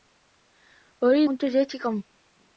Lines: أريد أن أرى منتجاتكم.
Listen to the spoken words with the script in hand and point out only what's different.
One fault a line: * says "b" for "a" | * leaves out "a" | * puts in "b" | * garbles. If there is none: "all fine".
* leaves out "أن أرى"